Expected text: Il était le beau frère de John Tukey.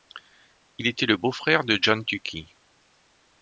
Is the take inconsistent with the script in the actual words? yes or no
no